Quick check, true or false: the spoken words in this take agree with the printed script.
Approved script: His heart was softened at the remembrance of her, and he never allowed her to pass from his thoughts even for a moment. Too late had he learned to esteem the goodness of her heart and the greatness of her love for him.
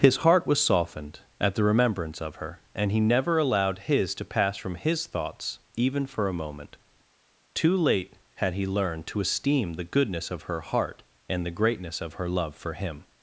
false